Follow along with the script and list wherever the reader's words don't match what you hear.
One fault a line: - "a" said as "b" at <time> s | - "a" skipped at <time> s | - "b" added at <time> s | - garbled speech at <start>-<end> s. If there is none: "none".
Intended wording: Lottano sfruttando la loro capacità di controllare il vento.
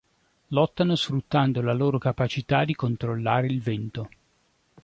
none